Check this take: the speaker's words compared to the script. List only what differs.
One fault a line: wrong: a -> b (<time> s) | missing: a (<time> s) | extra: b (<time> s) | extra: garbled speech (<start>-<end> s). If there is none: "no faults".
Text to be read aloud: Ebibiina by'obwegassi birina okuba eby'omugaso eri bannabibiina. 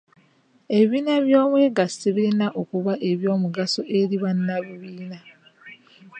no faults